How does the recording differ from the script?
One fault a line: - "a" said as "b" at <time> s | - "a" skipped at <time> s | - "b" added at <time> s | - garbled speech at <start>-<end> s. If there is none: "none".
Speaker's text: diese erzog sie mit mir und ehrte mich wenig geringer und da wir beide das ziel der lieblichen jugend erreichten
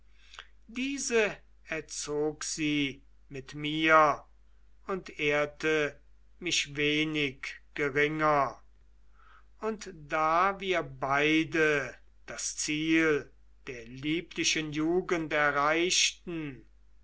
none